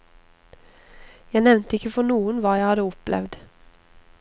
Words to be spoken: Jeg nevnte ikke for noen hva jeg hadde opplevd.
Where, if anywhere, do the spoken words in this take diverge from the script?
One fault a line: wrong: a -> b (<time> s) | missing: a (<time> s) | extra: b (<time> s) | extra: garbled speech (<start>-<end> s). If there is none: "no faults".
no faults